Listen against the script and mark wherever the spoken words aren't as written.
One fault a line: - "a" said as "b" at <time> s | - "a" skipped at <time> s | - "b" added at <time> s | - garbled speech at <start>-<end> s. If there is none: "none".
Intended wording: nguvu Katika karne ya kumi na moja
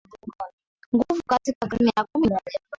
- "na" skipped at 2.3 s